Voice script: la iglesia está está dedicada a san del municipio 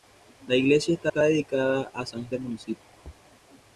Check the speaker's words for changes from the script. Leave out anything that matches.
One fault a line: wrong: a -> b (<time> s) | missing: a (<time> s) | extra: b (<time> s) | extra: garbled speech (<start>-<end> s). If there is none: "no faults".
no faults